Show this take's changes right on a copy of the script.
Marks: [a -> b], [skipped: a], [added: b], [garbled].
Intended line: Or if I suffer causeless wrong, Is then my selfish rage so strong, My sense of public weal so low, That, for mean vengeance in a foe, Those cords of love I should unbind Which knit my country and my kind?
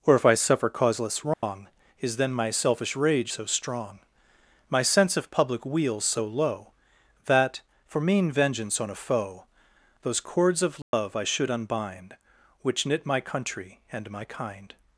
Or if I suffer causeless wrong, Is then my selfish rage so strong, My sense of public weal so low, That, for mean vengeance [in -> on] a foe, Those cords of love I should unbind Which knit my country and my kind?